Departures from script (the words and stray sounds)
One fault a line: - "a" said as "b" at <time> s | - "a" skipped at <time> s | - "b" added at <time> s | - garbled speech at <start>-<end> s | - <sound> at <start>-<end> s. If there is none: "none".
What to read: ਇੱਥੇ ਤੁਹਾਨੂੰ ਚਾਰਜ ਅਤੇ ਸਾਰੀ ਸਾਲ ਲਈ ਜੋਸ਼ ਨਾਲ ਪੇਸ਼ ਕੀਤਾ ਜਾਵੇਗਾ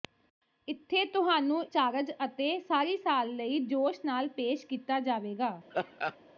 - laugh at 5.7-6.2 s